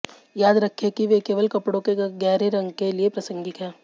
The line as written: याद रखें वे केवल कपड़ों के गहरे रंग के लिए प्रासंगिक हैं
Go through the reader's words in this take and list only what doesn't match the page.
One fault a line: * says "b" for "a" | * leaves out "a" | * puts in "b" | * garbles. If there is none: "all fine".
* puts in "कि"